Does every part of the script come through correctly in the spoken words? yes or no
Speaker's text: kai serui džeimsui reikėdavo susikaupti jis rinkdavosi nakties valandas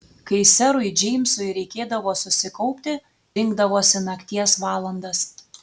no